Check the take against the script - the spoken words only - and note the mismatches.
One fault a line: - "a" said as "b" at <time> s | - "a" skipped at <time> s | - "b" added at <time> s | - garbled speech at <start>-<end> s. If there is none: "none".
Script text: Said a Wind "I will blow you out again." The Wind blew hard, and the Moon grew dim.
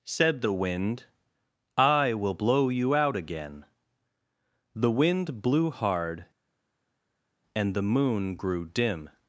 - "a" said as "the" at 0.4 s